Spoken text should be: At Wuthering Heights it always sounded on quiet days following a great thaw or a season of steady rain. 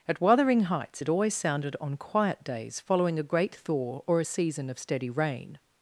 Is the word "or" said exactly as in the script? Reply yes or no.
yes